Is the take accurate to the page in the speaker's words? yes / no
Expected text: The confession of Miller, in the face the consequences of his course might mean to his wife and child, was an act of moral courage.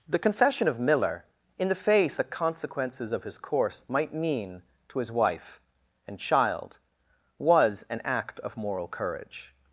yes